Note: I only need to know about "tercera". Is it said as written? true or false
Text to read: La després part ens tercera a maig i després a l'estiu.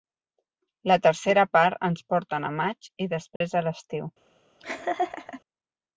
false